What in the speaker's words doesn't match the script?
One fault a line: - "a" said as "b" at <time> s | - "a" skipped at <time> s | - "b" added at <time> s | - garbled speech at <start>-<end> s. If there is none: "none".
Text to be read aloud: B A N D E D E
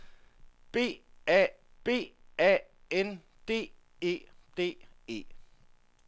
- "b A" added at 1.8 s